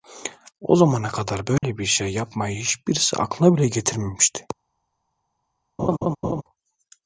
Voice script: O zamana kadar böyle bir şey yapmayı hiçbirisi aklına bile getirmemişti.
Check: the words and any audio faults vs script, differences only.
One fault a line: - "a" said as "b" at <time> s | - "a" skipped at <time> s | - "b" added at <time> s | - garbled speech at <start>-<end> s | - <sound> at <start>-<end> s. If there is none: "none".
- dropout at 1.6-1.6 s
- laugh at 5.8-6.4 s